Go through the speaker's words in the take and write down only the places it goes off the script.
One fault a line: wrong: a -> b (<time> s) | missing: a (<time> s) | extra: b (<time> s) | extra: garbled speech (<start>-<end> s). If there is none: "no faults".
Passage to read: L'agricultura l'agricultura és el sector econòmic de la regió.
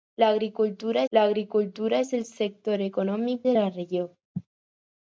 no faults